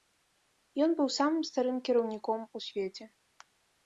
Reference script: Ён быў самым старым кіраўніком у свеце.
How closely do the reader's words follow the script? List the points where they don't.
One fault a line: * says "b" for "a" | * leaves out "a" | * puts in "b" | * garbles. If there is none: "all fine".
all fine